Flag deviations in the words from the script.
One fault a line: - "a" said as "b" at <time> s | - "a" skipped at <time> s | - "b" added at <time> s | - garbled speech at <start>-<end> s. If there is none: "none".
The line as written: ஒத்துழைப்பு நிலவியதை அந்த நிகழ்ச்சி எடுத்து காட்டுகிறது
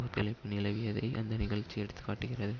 none